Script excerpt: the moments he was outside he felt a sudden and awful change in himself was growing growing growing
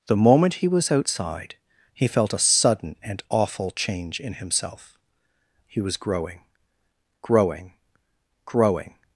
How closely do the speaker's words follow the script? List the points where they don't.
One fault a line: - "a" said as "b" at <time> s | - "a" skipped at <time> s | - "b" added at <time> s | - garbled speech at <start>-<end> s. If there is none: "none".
- "moments" said as "moment" at 0.1 s
- "he" added at 5.7 s